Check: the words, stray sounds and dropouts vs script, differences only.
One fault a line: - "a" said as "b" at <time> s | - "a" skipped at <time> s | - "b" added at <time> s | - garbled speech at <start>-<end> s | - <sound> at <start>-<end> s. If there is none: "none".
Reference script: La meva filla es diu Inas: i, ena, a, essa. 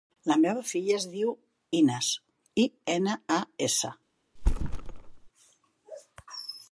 - thud at 4.4-5.3 s